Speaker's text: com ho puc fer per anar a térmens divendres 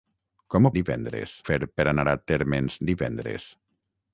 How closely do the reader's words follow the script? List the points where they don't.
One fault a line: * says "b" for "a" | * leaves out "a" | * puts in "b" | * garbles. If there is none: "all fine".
* says "divendres" for "puc"